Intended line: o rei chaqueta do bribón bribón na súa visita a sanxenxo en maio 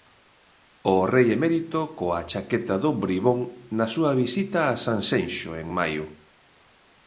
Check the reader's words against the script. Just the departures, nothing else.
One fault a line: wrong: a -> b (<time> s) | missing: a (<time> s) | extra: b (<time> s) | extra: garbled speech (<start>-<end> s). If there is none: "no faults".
extra: emérito coa (1.4 s)
missing: bribón (3.4 s)